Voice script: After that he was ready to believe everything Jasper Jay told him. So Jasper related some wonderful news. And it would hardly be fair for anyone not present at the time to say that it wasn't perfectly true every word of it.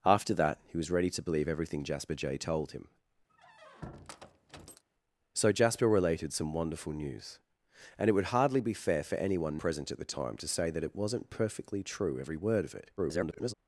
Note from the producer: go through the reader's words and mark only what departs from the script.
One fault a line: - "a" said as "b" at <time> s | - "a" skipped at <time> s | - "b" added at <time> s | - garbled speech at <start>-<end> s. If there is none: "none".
- "not" skipped at 9.6 s
- garbled speech at 13.0-13.5 s